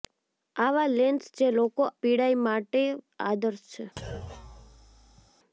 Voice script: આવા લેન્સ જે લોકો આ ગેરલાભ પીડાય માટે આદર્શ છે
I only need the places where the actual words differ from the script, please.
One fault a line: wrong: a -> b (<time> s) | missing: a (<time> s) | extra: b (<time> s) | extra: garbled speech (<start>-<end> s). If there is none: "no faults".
missing: આ ગેરલાભ (1.8 s)